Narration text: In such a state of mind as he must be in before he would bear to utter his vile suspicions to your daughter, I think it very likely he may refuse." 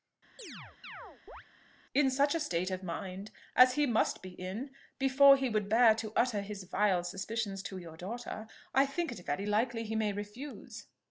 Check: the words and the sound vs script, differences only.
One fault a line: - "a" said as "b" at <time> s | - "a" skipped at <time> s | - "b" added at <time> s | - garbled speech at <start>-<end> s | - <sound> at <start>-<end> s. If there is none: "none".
- chirp at 0.4-1.4 s